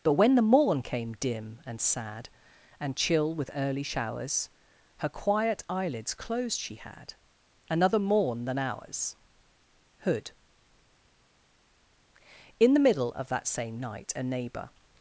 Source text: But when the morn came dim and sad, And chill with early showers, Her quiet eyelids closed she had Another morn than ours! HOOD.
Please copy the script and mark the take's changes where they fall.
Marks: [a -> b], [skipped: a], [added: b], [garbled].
But when the morn came dim and sad, And chill with early showers, Her quiet eyelids closed she had Another morn than ours! HOOD. [added: In the middle of that same night a neighbour]